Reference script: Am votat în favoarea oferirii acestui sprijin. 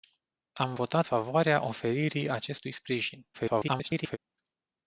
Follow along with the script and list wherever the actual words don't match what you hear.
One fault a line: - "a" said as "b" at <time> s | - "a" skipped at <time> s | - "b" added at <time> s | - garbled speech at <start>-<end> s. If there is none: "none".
- "în" skipped at 1.1 s
- garbled speech at 3.3-4.2 s